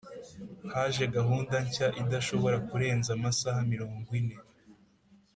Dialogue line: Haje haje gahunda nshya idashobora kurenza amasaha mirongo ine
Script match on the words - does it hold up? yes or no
no